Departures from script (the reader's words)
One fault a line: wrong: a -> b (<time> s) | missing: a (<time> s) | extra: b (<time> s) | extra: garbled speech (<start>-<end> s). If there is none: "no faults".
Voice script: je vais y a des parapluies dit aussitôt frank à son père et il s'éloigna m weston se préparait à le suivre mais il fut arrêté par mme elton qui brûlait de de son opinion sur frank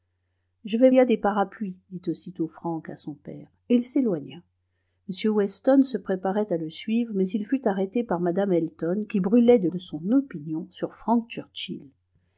no faults